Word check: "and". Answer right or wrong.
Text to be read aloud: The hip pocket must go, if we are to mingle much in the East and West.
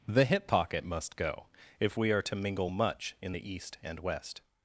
right